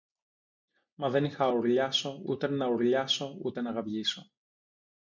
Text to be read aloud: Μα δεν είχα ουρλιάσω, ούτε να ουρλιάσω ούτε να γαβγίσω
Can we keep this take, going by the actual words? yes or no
yes